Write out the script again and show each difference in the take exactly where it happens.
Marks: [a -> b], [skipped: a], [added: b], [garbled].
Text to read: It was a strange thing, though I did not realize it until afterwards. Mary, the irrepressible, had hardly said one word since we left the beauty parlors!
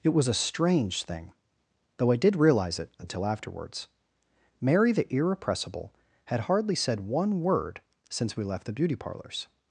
It was a strange thing, though I did [skipped: not] realize it until afterwards. Mary, the irrepressible, had hardly said one word since we left the beauty parlors!